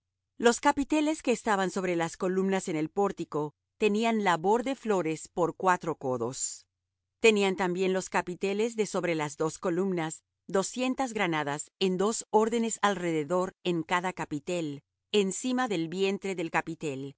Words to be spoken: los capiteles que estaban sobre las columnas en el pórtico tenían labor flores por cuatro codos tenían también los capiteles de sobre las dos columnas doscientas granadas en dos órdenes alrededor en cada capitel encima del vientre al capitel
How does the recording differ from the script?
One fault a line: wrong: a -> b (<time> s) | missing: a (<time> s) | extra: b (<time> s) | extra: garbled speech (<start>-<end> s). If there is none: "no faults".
extra: de (4.6 s)
wrong: al -> del (16.4 s)